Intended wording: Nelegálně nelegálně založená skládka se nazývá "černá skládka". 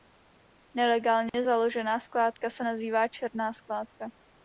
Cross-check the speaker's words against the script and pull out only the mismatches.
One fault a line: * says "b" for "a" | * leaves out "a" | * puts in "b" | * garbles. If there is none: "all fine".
* leaves out "nelegálně"